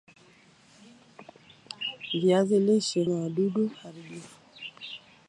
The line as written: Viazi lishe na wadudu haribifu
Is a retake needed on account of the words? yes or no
no